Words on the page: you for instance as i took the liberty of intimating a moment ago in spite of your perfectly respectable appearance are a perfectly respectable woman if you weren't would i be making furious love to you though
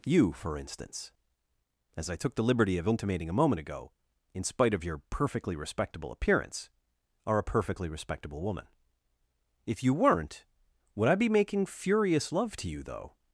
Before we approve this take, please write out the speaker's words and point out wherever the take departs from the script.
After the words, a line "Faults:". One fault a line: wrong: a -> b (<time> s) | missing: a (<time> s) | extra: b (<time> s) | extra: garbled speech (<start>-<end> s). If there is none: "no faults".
you for instance as i took the liberty of intimating a moment ago in spite of your perfectly respectable appearance are a perfectly respectable woman if you weren't would i be making furious love to you though
Faults:
no faults